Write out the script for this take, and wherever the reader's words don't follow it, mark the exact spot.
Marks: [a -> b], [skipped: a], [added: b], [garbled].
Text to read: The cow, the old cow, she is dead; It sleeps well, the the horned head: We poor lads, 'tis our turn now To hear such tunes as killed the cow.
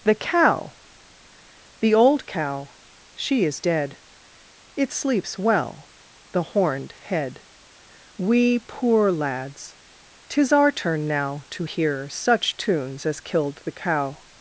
The cow, the old cow, she is dead; It sleeps well, the [skipped: the] horned head: We poor lads, 'tis our turn now To hear such tunes as killed the cow.